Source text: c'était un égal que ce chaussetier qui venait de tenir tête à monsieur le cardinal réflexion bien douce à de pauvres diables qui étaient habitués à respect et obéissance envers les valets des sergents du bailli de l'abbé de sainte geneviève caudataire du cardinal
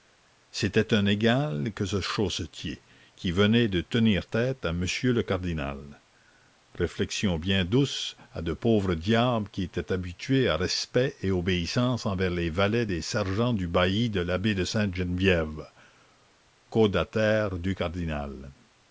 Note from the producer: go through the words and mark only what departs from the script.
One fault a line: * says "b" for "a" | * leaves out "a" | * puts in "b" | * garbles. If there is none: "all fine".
all fine